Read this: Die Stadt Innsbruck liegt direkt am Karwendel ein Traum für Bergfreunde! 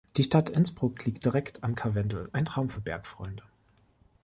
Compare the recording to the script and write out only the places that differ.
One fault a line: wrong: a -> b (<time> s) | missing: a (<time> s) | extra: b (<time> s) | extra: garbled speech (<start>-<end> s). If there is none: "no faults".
no faults